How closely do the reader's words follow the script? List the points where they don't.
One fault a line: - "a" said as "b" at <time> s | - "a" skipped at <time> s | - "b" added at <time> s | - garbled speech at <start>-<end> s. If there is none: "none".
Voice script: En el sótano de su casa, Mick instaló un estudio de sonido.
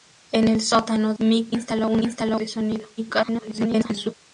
- "de su casa" skipped at 1.1 s
- "estudio" said as "instaló" at 2.0 s
- garbled speech at 3.0-4.1 s